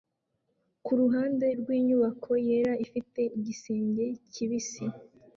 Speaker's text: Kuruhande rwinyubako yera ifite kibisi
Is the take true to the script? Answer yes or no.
no